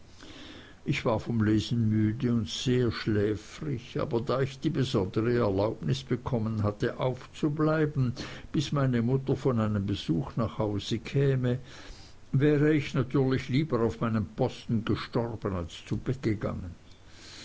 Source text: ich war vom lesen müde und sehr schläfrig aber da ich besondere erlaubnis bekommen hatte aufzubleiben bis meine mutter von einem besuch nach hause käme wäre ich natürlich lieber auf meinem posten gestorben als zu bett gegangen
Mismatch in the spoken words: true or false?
true